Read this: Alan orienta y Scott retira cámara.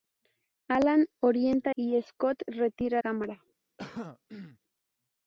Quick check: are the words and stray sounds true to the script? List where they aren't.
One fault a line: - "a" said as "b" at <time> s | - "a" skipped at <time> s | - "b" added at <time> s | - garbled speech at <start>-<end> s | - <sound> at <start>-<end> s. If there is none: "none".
- throat clearing at 3.8-4.6 s